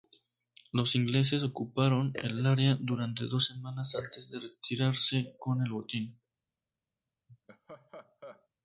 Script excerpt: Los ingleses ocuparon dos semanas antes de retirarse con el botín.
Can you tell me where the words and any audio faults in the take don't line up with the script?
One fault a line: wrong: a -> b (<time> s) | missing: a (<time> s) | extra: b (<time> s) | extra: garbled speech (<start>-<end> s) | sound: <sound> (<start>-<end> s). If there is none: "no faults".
extra: el área durante (2.1 s)
sound: laugh (7.3-8.5 s)